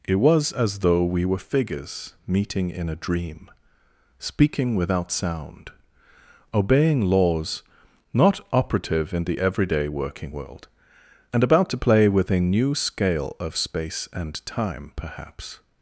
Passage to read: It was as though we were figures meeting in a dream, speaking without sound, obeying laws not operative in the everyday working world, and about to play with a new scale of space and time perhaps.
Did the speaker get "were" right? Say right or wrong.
right